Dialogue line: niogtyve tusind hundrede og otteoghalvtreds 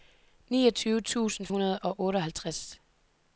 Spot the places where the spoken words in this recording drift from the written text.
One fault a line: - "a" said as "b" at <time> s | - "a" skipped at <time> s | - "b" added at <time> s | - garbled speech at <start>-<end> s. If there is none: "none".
none